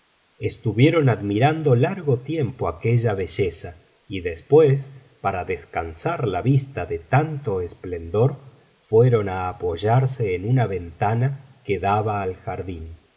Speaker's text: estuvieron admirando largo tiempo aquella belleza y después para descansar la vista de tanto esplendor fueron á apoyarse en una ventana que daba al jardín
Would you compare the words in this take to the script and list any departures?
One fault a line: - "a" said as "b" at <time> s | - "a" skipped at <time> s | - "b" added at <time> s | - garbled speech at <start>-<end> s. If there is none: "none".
none